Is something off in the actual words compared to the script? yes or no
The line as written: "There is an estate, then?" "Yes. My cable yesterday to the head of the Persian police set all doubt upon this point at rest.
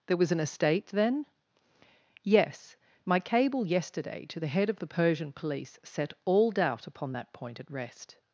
yes